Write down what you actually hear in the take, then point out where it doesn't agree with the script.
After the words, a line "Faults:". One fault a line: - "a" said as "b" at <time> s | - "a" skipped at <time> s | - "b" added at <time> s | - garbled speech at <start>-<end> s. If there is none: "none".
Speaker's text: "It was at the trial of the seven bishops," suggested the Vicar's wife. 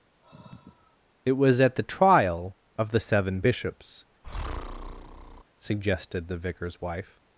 "It was at the trial of the seven bishops," suggested the Vicar's wife.
Faults:
none